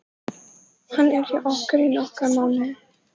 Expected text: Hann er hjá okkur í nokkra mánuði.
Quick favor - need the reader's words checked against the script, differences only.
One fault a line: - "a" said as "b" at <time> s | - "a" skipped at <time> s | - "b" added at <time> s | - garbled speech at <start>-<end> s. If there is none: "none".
none